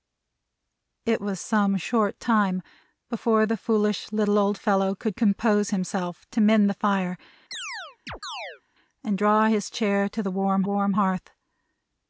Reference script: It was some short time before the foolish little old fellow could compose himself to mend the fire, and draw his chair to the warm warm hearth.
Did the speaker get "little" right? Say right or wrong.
right